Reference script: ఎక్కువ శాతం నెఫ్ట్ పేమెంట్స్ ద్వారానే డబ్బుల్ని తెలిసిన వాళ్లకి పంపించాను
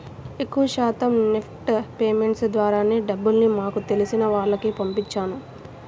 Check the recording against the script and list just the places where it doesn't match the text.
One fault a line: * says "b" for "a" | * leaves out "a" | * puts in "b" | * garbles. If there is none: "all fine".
* puts in "మాకు"